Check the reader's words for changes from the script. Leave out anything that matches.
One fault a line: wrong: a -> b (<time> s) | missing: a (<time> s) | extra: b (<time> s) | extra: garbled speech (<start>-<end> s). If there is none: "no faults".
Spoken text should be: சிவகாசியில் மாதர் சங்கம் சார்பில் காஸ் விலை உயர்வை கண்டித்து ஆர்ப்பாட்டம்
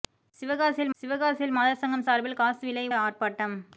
extra: சிவகாசியில் (1.0 s)
missing: உயர்வை கண்டித்து (2.8 s)